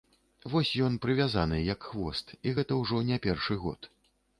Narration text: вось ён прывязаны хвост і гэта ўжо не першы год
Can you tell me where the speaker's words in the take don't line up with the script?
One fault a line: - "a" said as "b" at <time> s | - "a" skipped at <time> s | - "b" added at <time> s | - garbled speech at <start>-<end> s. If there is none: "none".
- "як" added at 1.7 s